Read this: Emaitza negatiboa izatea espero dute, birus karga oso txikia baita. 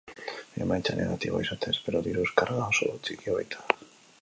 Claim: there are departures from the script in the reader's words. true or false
true